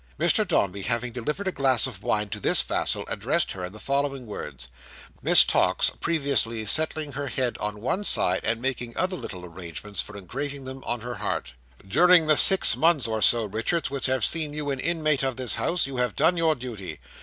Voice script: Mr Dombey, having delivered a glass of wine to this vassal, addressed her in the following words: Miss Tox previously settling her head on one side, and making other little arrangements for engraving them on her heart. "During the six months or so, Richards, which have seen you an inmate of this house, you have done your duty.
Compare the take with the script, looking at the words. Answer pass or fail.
pass